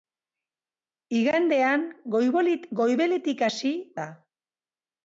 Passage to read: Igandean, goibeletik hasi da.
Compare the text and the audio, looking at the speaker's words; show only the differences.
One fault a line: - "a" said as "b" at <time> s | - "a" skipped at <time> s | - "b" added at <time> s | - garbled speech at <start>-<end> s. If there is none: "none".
none